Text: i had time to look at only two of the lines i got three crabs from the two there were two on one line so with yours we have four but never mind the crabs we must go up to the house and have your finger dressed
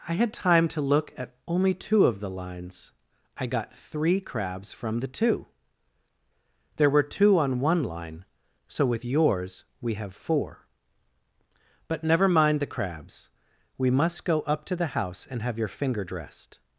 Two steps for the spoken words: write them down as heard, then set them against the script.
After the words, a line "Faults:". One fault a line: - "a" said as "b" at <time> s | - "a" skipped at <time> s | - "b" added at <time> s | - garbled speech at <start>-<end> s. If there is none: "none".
i had time to look at only two of the lines i got three crabs from the two there were two on one line so with yours we have four but never mind the crabs we must go up to the house and have your finger dressed
Faults:
none